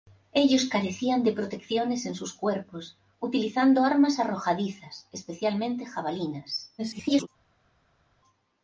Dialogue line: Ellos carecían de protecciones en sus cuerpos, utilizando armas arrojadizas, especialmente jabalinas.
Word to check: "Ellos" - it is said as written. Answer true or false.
true